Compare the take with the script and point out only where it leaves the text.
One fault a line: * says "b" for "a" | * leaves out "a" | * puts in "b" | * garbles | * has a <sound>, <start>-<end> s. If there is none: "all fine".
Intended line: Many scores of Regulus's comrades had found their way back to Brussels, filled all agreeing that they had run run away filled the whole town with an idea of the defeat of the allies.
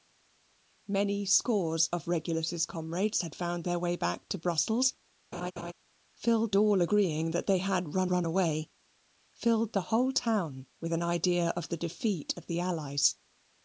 * has a laugh, 5.3-5.7 s